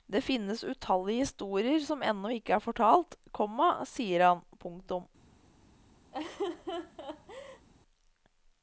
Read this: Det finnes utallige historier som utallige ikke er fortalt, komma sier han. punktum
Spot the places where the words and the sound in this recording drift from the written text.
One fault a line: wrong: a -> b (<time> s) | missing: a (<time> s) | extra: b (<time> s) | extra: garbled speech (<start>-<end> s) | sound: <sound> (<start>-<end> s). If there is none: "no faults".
wrong: utallige -> ennå (2.0 s)
sound: laugh (6.1-7.7 s)